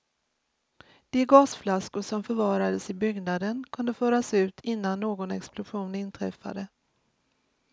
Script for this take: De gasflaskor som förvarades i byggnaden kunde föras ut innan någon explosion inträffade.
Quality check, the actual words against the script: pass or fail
pass